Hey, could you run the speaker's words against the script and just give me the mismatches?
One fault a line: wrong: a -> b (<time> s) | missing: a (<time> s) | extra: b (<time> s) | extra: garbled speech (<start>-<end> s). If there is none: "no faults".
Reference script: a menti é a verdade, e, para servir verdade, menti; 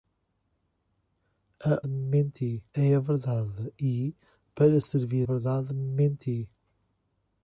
no faults